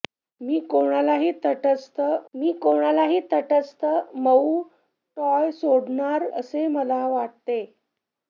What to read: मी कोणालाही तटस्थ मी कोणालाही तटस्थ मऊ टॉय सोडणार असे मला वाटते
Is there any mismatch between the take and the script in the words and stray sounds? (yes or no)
no